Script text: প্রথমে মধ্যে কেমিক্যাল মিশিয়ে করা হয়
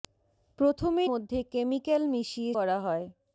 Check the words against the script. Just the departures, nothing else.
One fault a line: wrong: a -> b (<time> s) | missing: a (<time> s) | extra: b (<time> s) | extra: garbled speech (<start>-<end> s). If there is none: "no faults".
no faults